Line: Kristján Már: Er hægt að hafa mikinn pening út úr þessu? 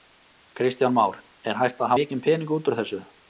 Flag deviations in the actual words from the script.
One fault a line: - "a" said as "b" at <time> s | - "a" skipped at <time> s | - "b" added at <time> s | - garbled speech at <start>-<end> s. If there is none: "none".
- "hafa" skipped at 1.9 s